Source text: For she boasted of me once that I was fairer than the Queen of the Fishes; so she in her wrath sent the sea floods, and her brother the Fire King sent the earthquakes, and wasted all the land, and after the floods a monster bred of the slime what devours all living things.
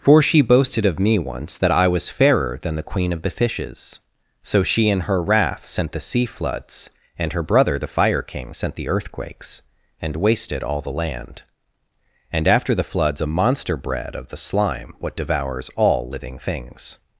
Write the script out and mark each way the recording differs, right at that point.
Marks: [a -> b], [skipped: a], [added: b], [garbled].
For she boasted of me once that I was fairer than the Queen of the Fishes; so she in her wrath sent the sea floods, and her brother the Fire King sent the earthquakes, and wasted all the land, and after the floods a monster bred of the slime what devours all living things.